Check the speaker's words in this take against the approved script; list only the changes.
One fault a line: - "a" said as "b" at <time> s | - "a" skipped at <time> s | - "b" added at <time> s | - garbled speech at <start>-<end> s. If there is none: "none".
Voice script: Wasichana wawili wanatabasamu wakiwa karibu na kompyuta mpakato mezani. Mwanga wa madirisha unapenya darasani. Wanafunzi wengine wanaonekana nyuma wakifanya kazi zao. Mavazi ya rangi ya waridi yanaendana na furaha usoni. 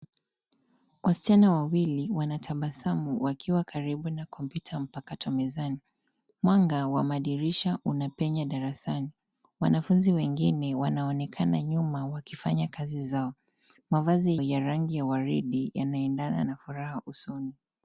none